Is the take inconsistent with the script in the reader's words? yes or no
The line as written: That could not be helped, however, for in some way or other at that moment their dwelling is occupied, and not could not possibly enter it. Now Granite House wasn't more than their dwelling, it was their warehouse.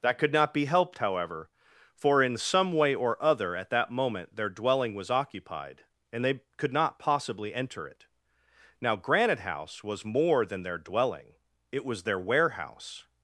yes